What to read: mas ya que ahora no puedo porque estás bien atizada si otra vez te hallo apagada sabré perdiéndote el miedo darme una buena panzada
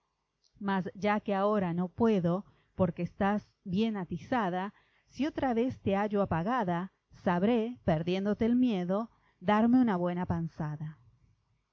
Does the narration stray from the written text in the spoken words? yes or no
no